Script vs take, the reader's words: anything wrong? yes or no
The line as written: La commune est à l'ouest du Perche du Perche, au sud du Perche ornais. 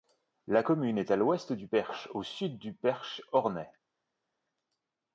yes